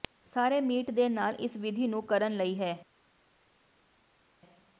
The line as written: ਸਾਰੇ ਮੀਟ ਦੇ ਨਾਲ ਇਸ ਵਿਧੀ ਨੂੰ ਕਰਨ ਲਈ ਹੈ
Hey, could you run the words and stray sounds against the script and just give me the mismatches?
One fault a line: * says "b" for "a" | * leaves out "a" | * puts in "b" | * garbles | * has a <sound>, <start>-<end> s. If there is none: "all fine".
all fine